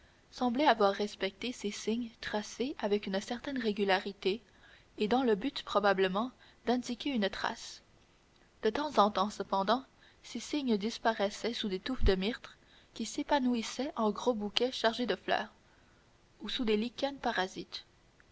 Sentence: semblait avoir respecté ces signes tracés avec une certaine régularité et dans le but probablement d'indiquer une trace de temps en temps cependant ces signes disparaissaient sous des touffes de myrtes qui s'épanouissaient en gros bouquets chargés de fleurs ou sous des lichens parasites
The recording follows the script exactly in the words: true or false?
true